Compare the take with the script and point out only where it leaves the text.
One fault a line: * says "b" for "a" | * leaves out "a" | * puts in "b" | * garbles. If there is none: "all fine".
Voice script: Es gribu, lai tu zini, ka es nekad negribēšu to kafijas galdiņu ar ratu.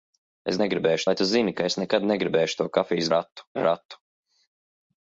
* says "negribēšu" for "gribu"
* says "ratu" for "galdiņu"